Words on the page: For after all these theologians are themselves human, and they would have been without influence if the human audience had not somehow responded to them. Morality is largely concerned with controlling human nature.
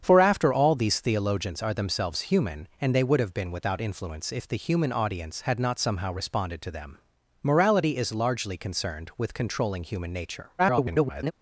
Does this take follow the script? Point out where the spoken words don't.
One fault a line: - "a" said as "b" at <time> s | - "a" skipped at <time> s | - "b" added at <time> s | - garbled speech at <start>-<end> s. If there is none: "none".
- garbled speech at 10.6-11.3 s